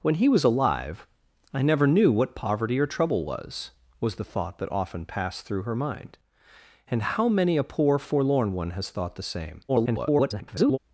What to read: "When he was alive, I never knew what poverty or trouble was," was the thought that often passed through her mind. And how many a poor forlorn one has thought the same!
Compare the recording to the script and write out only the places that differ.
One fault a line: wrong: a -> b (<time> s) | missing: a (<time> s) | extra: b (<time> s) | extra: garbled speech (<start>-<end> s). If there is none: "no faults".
extra: garbled speech (9.7-10.8 s)